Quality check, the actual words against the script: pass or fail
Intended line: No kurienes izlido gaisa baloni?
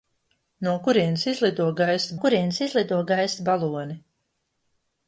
fail